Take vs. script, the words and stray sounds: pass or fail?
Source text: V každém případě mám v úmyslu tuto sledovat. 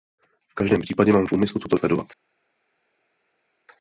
pass